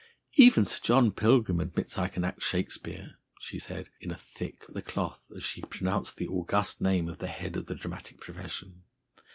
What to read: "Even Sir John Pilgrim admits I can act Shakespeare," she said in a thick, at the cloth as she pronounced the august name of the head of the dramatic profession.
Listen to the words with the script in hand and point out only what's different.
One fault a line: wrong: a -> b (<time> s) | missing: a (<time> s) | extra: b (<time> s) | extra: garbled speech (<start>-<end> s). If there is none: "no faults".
no faults